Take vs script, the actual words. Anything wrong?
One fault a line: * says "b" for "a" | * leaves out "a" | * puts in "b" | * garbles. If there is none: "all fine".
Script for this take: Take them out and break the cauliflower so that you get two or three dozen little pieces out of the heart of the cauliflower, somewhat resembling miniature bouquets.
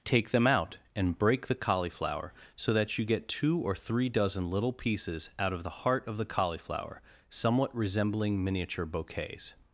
all fine